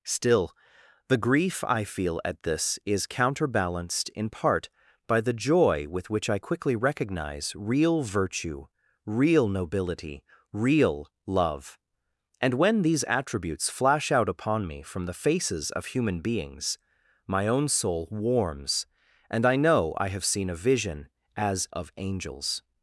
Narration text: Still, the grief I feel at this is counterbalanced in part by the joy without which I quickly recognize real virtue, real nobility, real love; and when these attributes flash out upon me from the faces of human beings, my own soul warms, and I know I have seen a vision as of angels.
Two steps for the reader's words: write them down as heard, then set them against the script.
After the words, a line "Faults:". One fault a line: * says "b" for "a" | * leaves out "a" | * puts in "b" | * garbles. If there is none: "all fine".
Still, the grief I feel at this is counterbalanced in part by the joy with which I quickly recognize real virtue, real nobility, real love; and when these attributes flash out upon me from the faces of human beings, my own soul warms, and I know I have seen a vision as of angels.
Faults:
* says "with" for "without"